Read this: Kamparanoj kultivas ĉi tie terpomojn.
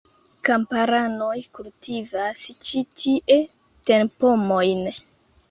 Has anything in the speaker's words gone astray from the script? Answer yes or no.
no